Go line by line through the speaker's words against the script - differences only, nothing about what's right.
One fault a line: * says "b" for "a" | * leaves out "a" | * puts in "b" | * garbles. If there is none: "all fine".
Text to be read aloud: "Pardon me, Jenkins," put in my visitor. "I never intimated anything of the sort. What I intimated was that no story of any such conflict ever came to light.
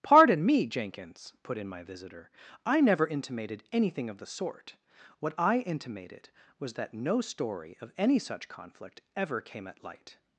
* says "at" for "to"